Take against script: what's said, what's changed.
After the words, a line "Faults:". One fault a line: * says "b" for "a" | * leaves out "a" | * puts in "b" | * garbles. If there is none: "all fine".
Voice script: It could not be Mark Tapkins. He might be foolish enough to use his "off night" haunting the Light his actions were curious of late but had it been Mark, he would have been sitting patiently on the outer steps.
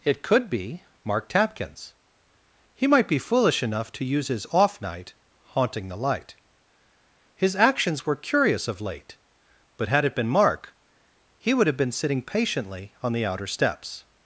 It could be Mark Tapkins. He might be foolish enough to use his "off night" haunting the Light his actions were curious of late but had it been Mark, he would have been sitting patiently on the outer steps.
Faults:
* leaves out "not"